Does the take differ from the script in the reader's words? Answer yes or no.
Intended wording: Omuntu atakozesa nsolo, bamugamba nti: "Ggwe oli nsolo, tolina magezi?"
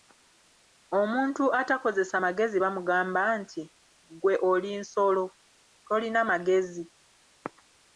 yes